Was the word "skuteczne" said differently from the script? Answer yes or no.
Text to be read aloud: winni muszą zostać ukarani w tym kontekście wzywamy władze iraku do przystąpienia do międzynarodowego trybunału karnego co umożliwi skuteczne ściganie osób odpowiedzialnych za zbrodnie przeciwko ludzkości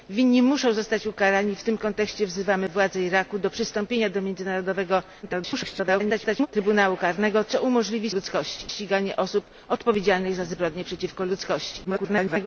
yes